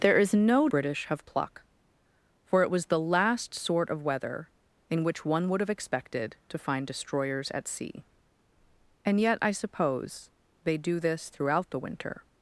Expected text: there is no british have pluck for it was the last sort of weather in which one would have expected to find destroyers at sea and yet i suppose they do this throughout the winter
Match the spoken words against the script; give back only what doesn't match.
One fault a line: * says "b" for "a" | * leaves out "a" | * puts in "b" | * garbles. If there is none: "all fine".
all fine